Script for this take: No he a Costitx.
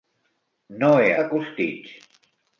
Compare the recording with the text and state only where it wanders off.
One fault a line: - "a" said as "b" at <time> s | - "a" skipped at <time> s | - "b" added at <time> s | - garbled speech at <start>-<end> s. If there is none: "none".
none